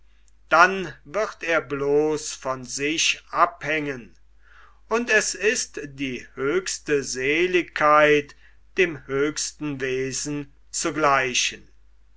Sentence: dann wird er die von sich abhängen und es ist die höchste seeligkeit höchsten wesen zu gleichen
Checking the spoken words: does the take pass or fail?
fail